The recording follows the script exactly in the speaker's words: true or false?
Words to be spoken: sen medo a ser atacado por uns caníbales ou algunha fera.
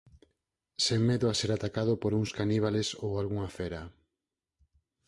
true